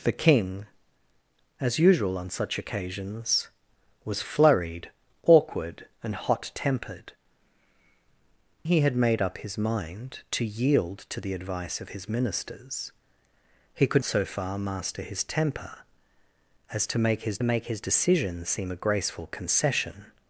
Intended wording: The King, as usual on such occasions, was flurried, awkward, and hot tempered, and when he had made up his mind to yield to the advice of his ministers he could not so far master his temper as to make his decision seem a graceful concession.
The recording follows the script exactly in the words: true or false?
false